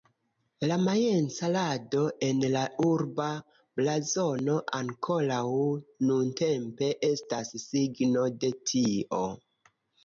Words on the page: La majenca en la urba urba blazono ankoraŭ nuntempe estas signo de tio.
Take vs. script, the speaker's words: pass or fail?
fail